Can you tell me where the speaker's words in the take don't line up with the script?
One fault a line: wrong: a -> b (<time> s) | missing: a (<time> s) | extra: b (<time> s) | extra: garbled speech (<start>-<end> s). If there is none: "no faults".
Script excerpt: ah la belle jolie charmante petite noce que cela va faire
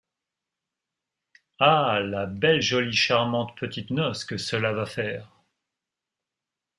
no faults